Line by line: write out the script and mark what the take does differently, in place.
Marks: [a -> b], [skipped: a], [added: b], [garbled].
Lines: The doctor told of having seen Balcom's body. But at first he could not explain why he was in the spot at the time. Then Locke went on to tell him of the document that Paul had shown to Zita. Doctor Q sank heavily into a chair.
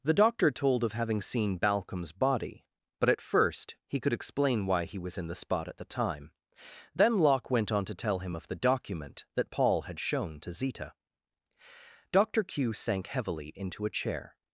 The doctor told of having seen Balcom's body. But at first he could [skipped: not] explain why he was in the spot at the time. Then Locke went on to tell him of the document that Paul had shown to Zita. Doctor Q sank heavily into a chair.